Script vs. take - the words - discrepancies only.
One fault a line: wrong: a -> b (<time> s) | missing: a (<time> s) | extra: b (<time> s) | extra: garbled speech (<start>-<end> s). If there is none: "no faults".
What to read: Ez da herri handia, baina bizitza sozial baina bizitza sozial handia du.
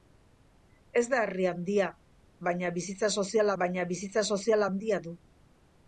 no faults